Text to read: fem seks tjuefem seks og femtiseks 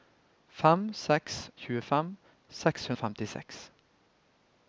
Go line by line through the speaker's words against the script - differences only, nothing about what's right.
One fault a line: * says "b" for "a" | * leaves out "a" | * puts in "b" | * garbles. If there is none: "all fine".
all fine